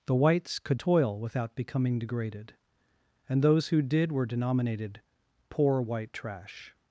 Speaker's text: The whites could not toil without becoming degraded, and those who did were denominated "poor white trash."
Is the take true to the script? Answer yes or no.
no